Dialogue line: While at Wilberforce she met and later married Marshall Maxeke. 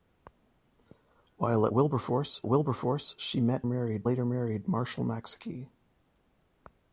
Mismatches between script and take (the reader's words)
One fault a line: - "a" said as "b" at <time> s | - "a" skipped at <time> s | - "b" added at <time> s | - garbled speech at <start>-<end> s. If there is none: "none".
- "Wilberforce" added at 2.5 s
- "and" said as "married" at 3.6 s